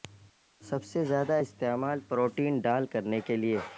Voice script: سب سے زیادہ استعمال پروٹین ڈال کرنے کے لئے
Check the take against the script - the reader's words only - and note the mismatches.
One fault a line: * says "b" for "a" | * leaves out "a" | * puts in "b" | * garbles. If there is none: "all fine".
all fine